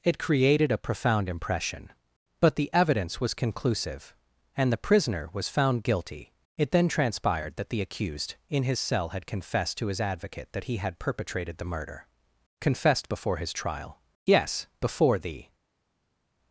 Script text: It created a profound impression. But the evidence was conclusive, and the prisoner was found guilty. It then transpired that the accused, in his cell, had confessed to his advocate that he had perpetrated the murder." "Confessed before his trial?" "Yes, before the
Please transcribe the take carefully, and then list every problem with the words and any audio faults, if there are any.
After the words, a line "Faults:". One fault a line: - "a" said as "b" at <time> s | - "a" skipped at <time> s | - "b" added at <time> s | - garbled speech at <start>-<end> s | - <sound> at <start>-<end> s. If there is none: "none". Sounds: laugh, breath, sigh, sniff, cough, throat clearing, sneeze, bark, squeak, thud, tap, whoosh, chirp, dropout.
It created a profound impression. But the evidence was conclusive, and the prisoner was found guilty. It then transpired that the accused, in his cell, had confessed to his advocate that he had perpetrated the murder." "Confessed before his trial?" "Yes, before the
Faults:
none